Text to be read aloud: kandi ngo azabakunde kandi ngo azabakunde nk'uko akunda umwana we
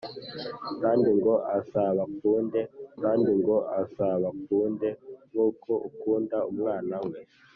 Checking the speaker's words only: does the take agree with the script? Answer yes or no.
yes